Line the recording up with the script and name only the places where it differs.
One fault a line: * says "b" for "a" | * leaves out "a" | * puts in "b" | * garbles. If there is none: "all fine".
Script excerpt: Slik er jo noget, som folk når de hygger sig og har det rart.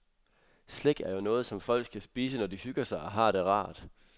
* puts in "skal spise"